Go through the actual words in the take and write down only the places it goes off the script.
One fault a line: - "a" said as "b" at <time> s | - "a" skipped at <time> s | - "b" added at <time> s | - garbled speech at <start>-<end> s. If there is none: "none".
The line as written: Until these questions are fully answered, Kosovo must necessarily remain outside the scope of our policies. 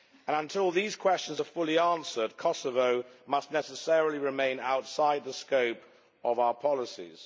none